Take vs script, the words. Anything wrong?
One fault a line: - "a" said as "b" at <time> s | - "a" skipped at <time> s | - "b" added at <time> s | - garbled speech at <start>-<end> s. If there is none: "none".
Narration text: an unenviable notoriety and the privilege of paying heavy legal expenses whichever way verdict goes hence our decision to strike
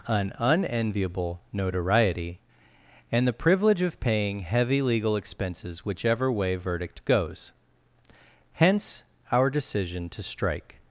none